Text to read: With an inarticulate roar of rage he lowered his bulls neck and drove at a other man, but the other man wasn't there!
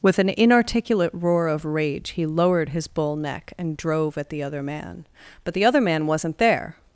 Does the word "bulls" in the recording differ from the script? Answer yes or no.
yes